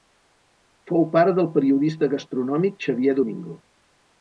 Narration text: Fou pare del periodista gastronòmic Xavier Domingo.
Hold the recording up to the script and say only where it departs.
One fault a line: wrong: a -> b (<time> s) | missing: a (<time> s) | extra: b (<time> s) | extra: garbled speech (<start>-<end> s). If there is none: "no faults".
no faults